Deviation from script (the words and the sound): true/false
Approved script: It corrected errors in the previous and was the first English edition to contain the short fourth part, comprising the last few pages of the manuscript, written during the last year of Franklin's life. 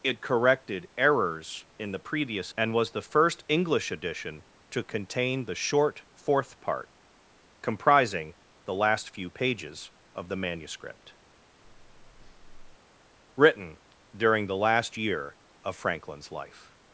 true